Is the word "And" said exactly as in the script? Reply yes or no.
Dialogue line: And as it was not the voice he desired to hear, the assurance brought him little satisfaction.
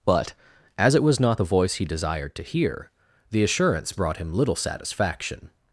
no